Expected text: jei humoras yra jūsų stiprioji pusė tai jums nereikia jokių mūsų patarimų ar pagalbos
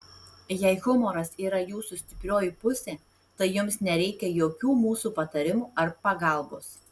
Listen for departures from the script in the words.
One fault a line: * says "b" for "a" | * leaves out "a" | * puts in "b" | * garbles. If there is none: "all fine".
all fine